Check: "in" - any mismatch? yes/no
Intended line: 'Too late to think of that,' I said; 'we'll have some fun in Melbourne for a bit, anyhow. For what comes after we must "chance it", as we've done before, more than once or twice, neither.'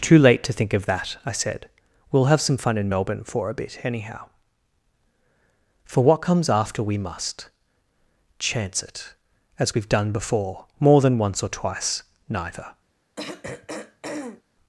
no